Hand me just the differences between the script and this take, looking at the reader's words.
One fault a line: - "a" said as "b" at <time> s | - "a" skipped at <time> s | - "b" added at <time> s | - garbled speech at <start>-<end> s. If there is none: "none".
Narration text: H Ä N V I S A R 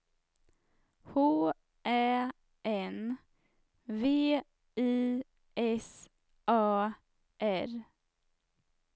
none